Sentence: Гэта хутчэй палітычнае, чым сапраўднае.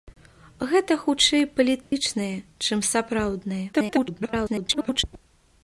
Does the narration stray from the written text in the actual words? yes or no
yes